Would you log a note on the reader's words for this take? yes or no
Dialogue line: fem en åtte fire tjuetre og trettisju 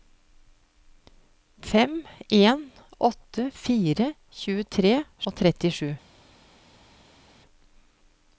no